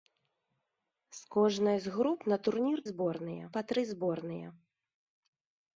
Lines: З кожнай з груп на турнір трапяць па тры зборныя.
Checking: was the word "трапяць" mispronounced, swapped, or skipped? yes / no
yes